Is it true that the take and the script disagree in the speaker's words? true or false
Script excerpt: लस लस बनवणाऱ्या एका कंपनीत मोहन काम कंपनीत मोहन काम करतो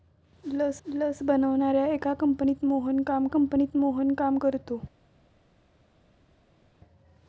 false